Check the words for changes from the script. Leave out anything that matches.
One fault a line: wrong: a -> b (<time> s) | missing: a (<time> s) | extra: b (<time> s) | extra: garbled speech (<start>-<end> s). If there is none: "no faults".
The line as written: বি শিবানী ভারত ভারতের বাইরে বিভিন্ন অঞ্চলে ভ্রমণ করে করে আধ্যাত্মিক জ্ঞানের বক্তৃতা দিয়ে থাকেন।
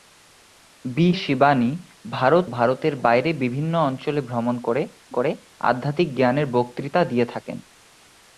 no faults